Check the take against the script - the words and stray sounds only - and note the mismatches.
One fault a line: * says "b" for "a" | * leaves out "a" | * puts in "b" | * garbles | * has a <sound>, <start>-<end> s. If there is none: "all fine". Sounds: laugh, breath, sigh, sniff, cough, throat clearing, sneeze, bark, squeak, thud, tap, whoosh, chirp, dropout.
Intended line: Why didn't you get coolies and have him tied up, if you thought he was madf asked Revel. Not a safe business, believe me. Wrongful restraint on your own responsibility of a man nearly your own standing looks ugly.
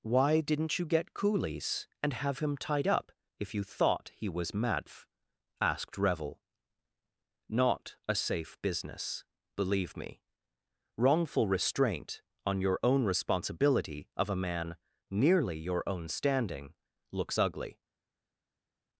all fine